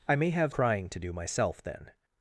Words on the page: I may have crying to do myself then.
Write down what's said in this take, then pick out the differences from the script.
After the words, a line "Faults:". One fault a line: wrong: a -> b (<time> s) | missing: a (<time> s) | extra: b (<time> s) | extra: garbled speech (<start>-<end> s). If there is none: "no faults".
I may have crying to do myself then.
Faults:
no faults